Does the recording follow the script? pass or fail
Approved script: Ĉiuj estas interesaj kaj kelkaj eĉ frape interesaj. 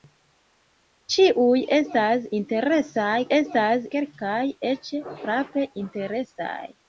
fail